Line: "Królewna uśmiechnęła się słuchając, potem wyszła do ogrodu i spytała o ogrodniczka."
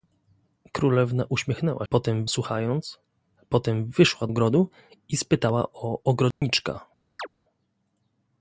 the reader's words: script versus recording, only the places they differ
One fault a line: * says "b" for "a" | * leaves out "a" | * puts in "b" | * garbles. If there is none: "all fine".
* says "potem" for "się"
* leaves out "do"